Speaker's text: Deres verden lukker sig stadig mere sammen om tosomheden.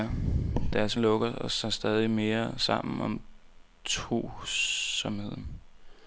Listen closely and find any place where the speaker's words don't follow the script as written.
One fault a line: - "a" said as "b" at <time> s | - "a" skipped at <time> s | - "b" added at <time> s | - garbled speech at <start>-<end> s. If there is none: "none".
- "verden" skipped at 1.0 s